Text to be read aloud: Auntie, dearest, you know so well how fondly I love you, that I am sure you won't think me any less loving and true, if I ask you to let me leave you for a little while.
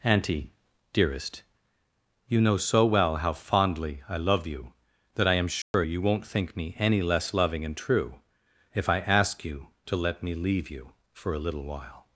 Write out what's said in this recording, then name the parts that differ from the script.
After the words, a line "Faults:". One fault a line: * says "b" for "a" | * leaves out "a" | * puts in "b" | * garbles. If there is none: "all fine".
Auntie, dearest, you know so well how fondly I love you, that I am sure you won't think me any less loving and true, if I ask you to let me leave you for a little while.
Faults:
all fine